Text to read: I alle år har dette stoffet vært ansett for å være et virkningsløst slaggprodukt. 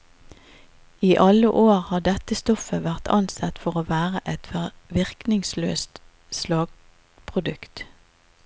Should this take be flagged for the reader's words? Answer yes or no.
no